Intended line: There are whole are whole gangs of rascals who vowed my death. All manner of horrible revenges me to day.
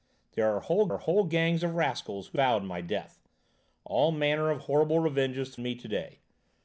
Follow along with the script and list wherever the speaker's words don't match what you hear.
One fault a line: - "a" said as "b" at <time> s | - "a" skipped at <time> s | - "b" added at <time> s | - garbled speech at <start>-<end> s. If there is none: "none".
none